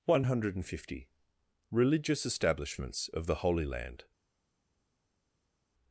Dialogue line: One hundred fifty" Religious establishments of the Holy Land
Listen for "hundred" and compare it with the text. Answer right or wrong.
right